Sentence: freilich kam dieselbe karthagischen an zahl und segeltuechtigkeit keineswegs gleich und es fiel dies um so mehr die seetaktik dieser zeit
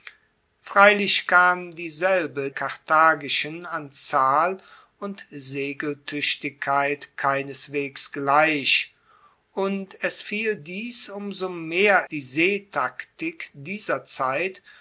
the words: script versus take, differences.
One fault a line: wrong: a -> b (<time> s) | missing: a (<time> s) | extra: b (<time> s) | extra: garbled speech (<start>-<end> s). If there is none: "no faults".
no faults